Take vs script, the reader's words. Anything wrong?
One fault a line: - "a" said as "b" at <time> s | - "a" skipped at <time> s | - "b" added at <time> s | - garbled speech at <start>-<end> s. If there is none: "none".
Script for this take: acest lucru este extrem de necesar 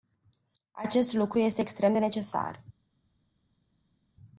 none